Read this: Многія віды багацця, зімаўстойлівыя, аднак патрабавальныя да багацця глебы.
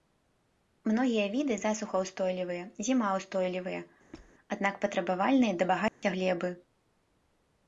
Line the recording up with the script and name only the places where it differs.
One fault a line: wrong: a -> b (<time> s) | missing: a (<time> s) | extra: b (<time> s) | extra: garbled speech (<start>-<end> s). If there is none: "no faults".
wrong: багацця -> засухаўстойлівыя (1.6 s)